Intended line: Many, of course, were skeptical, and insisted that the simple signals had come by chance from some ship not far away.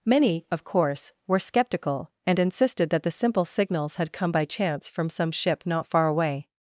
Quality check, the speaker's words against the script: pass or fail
pass